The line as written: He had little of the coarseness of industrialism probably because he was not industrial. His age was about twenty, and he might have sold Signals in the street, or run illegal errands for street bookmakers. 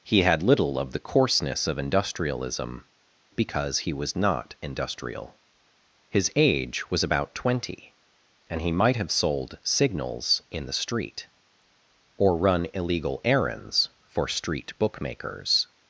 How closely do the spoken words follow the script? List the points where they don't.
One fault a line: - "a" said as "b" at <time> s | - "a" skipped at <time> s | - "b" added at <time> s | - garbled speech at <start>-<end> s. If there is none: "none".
- "probably" skipped at 2.9 s